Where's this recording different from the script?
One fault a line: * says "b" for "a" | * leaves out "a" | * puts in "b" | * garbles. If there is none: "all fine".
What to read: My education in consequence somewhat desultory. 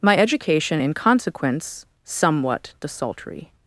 all fine